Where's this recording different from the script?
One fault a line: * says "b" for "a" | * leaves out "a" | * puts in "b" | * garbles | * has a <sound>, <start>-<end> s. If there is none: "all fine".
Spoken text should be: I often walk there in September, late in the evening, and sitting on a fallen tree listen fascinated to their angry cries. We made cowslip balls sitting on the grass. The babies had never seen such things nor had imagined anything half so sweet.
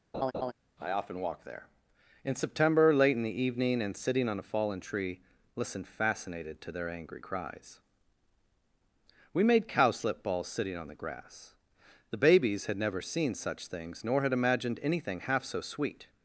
* has a laugh, 0.1-0.5 s